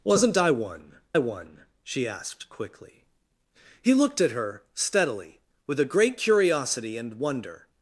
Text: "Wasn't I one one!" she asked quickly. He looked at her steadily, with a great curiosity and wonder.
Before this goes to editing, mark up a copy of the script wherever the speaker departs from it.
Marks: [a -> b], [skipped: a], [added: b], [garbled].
"Wasn't I one one!" she asked quickly. He looked at her steadily, with a great curiosity and wonder.